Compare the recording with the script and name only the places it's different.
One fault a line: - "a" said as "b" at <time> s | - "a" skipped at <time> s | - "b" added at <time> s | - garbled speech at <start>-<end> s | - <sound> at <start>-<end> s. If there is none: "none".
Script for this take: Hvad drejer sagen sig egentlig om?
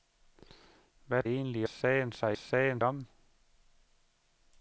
- "drejer" said as "egentlig" at 1.2 s
- "egentlig" said as "sagen" at 2.3 s